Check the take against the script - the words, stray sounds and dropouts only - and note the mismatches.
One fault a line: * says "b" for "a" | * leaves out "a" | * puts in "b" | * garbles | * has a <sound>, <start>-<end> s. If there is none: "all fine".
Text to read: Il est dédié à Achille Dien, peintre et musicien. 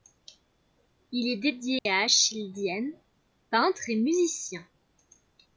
* has a dropout, 1.8-1.9 s